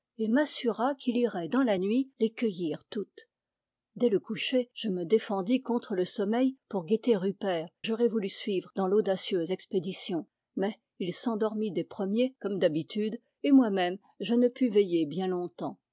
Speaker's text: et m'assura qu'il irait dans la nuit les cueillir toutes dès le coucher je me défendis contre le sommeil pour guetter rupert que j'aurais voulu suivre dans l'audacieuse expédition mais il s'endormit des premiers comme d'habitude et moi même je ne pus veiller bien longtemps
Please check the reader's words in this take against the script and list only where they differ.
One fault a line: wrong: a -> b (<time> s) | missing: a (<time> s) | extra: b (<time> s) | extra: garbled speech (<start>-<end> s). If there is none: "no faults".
missing: que (7.7 s)